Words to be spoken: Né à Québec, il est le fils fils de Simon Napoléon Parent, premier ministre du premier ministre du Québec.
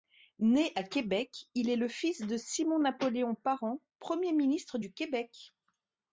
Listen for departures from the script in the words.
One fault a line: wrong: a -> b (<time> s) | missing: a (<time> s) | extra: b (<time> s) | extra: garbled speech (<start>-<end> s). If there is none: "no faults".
missing: fils (2.2 s)
missing: premier ministre du (4.9 s)